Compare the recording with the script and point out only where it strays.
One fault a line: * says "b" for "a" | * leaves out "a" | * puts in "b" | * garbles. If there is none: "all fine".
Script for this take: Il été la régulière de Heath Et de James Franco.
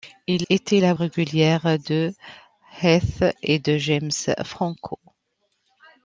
all fine